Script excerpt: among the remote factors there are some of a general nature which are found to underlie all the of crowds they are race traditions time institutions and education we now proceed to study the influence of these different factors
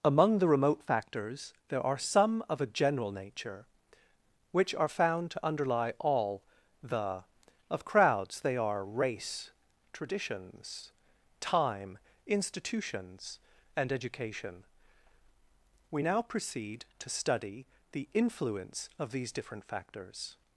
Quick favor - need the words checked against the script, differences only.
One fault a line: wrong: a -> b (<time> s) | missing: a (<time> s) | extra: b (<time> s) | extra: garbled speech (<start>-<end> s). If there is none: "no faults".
no faults